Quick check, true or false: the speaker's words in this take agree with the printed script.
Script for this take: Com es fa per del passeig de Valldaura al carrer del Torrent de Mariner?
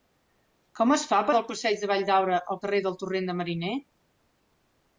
true